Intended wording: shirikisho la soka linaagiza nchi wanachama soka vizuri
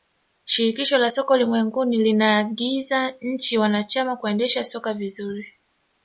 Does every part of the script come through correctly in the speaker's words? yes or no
no